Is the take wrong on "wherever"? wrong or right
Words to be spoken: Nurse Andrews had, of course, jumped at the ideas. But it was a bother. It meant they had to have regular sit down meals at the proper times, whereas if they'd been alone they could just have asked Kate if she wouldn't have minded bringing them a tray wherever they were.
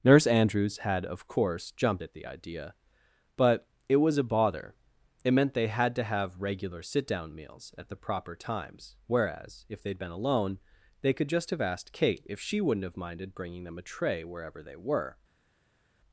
right